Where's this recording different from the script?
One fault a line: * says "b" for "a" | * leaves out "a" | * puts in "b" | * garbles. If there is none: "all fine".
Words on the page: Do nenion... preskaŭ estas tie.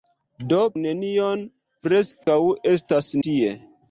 all fine